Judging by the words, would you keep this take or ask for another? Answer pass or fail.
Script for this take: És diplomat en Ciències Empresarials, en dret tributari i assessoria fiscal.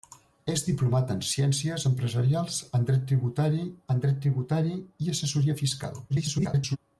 fail